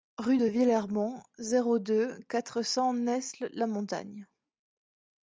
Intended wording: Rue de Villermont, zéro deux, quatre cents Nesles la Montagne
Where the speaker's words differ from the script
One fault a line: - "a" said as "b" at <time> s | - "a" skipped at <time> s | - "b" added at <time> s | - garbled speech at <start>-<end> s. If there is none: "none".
none